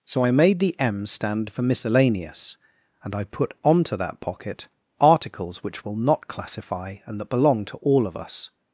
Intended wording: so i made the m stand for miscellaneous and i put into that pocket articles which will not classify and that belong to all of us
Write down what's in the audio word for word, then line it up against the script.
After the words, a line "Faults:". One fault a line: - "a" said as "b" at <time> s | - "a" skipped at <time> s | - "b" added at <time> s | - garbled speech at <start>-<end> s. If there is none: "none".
so i made the m stand for miscellaneous and i put onto that pocket articles which will not classify and that belong to all of us
Faults:
- "into" said as "onto" at 3.6 s